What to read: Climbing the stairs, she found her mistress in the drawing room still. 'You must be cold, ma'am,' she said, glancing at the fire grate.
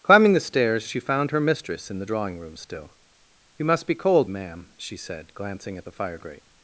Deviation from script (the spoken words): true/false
false